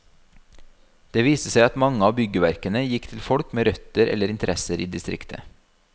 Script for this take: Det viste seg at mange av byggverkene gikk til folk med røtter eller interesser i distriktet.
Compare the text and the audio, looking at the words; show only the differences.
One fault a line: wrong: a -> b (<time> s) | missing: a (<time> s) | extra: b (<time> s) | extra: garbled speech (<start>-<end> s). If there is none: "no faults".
no faults